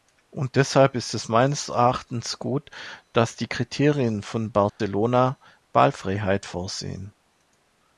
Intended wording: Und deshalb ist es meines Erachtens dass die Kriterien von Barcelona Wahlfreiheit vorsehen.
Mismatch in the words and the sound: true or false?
true